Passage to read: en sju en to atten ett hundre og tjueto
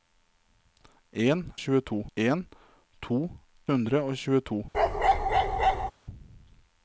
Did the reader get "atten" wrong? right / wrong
wrong